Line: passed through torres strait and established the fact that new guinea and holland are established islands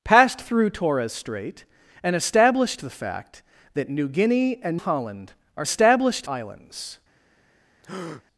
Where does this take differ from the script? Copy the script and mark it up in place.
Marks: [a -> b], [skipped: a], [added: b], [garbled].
passed through torres strait and established the fact that new guinea and holland are established islands